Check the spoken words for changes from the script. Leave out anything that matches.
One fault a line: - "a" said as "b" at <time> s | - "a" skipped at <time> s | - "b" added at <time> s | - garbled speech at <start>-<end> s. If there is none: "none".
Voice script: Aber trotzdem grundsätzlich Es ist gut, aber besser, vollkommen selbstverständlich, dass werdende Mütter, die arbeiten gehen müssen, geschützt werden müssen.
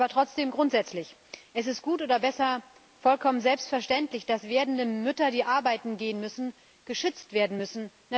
- "aber" said as "oder" at 2.0 s